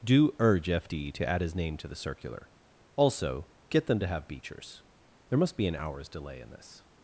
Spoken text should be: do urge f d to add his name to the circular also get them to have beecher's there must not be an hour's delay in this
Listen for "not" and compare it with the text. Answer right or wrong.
wrong